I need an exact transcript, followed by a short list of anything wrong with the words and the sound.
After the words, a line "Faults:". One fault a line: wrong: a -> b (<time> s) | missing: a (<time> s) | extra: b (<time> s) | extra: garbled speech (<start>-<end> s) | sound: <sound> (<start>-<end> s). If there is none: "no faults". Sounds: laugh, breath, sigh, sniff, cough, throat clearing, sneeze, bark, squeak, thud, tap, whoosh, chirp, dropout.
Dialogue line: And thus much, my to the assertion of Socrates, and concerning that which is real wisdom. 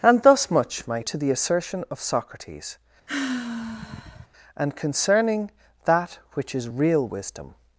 And thus much, my to the assertion of Socrates, and concerning that which is real wisdom.
Faults:
sound: sigh (3.1-4.3 s)